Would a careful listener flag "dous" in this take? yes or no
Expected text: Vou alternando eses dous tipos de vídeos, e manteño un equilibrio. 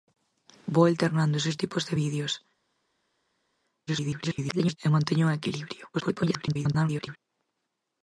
yes